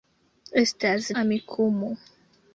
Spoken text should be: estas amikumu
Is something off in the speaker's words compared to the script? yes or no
no